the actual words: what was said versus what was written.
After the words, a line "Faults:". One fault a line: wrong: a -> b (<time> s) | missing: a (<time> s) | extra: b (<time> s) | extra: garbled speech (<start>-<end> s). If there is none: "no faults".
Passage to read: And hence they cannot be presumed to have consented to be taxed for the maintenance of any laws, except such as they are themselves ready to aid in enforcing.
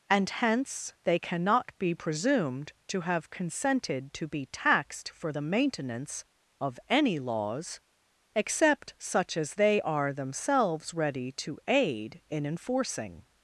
And hence they cannot be presumed to have consented to be taxed for the maintenance of any laws, except such as they are themselves ready to aid in enforcing.
Faults:
no faults